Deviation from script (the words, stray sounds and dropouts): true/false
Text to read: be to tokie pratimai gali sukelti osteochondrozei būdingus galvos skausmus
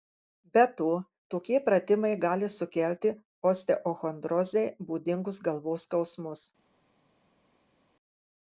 false